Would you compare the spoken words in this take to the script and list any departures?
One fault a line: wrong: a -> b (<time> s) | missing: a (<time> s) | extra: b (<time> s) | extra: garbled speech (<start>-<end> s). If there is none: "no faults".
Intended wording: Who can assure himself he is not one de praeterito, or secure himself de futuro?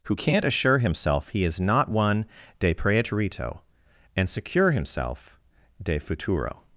wrong: can -> can't (0.1 s)
wrong: or -> and (4.2 s)